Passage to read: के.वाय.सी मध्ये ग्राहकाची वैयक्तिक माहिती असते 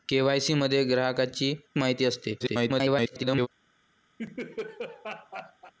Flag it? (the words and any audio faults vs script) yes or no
yes